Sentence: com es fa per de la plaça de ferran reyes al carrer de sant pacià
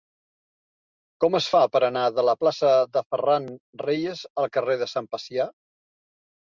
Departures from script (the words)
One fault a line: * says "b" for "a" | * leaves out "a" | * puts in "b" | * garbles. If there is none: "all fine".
* puts in "anar"